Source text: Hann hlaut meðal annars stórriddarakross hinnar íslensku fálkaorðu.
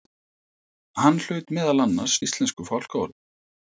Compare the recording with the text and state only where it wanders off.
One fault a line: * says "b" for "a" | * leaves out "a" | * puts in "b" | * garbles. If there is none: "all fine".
* leaves out "stórriddarakross hinnar"